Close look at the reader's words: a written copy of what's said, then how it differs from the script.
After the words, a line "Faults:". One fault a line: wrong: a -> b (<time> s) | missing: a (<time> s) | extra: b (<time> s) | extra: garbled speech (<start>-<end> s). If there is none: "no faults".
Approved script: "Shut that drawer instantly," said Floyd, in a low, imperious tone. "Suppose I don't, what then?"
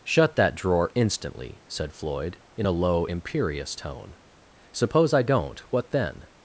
"Shut that drawer instantly," said Floyd, in a low, imperious tone. "Suppose I don't, what then?"
Faults:
no faults